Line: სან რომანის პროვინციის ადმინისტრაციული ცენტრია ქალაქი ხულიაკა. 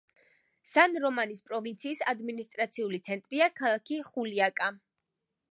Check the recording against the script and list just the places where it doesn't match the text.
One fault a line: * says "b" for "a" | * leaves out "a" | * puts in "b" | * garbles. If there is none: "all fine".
all fine